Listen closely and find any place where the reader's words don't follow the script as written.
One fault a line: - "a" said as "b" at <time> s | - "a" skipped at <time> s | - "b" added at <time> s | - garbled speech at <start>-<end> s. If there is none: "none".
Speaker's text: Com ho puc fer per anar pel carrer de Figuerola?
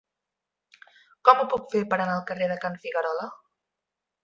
- "pel" said as "al" at 2.1 s
- "Can" added at 2.6 s